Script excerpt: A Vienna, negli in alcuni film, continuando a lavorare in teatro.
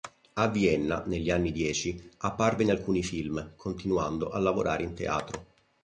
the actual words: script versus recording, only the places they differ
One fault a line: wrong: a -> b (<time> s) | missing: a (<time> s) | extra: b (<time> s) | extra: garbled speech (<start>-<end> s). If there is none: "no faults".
extra: anni dieci apparve (1.3 s)